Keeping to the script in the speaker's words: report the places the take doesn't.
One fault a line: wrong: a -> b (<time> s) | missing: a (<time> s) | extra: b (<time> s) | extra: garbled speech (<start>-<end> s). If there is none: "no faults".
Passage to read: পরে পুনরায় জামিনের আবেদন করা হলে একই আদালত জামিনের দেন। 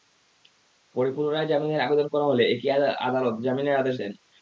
extra: আদেশ (3.8 s)